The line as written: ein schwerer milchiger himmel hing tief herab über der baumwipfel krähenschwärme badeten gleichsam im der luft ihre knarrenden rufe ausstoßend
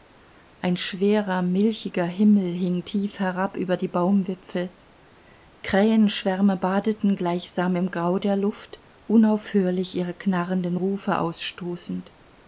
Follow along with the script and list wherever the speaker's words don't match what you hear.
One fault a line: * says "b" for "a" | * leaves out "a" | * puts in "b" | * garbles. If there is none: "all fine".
* says "die" for "der"
* puts in "grau"
* puts in "unaufhörlich"